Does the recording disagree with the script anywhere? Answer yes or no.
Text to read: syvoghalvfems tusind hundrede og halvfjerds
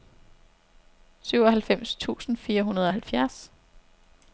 yes